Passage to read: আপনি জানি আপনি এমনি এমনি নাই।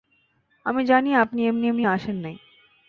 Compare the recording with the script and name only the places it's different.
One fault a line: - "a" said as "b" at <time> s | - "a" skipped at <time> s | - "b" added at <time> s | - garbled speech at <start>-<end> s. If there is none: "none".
- "আপনি" said as "আমি" at 0.7 s
- "আসেন" added at 1.9 s